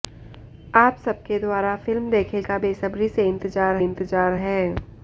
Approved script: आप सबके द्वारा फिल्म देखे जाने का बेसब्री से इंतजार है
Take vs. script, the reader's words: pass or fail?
fail